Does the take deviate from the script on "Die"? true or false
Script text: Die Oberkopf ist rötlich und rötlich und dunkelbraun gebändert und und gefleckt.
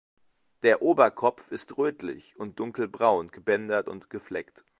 true